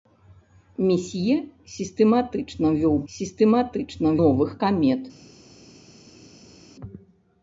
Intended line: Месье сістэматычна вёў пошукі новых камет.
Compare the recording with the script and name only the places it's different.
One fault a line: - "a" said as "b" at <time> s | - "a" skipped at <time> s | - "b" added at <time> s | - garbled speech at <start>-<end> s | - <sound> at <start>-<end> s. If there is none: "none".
- "пошукі" said as "сістэматычна" at 3.1 s